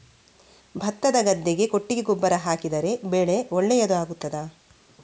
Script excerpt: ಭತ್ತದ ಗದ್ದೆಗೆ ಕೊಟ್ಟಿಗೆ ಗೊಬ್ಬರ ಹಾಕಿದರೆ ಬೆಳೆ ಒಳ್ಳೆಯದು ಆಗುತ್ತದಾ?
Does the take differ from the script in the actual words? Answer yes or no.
no